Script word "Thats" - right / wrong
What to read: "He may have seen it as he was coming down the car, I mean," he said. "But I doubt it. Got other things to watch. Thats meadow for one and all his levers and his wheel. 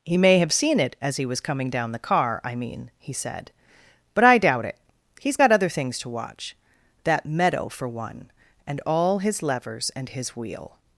wrong